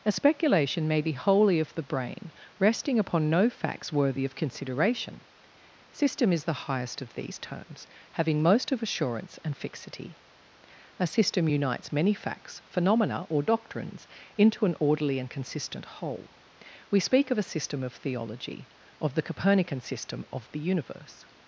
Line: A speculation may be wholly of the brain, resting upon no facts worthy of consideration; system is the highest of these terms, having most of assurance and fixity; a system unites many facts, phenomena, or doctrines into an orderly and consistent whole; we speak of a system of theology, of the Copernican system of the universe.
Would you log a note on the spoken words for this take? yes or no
no